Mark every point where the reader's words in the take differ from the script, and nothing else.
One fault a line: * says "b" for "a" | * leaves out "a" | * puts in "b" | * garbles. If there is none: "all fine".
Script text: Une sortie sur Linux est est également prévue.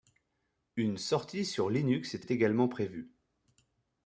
all fine